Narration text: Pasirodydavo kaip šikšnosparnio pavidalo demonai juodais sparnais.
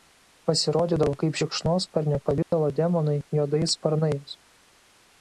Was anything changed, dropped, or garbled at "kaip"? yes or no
no